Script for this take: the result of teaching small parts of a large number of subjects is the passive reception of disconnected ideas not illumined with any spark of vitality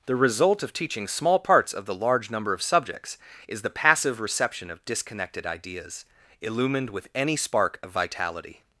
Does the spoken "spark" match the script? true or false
true